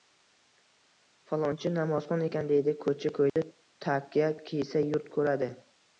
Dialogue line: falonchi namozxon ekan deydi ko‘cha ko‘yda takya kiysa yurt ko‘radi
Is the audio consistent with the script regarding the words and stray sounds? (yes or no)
no